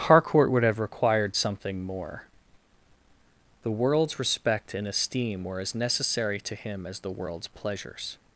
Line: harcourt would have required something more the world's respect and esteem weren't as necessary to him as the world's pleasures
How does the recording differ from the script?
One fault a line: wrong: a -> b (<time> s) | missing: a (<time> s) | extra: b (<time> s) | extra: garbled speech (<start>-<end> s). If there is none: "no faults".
wrong: weren't -> were (5.4 s)